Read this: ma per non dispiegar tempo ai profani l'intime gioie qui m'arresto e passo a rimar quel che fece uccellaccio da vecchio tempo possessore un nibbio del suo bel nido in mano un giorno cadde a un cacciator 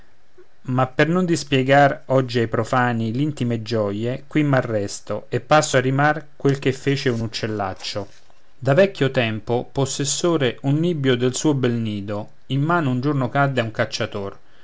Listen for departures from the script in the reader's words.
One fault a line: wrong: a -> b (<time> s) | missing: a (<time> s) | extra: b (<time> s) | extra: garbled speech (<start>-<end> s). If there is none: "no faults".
wrong: tempo -> oggi (2.1 s)
extra: un (7.1 s)